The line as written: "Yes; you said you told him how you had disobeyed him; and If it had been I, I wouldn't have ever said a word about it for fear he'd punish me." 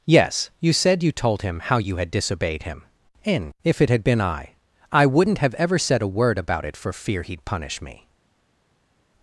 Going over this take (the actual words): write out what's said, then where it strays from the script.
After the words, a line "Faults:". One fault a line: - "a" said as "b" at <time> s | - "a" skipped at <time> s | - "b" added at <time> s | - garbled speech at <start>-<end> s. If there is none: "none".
"Yes; you said you told him how you had disobeyed him; and If it had been I, I wouldn't have ever said a word about it for fear he'd punish me."
Faults:
none